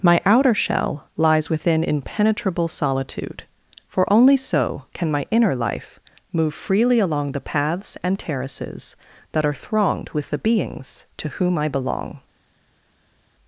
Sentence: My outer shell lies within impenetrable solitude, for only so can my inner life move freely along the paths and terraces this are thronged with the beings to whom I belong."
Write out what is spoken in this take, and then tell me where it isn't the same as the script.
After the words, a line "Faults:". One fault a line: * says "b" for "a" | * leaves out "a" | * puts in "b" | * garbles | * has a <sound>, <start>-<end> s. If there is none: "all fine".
My outer shell lies within impenetrable solitude, for only so can my inner life move freely along the paths and terraces that are thronged with the beings to whom I belong."
Faults:
* says "that" for "this"